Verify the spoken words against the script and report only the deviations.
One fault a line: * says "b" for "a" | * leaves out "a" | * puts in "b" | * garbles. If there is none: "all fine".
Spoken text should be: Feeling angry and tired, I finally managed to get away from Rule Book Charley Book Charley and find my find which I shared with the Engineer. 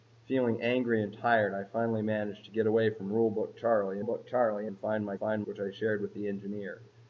all fine